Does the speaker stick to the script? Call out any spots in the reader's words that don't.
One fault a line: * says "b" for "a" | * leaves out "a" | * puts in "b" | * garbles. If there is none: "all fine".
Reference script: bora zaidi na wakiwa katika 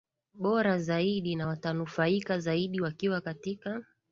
* puts in "watanufaika zaidi"